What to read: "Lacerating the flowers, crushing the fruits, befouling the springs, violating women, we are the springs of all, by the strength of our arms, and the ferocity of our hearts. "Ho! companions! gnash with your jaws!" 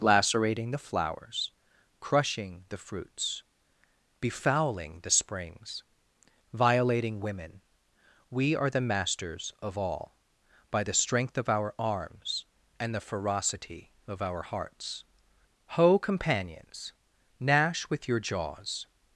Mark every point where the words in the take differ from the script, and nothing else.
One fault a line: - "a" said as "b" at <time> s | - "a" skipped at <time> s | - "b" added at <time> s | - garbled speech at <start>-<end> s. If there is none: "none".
- "springs" said as "masters" at 8.8 s